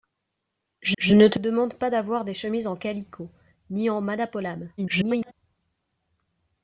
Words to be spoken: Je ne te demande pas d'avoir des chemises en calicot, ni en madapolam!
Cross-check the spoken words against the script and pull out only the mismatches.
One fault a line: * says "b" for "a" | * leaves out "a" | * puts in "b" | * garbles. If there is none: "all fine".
* puts in "je"
* garbles